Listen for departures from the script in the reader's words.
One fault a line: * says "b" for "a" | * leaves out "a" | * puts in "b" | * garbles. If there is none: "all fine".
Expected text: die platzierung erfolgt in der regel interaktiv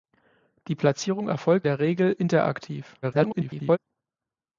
* leaves out "in"
* garbles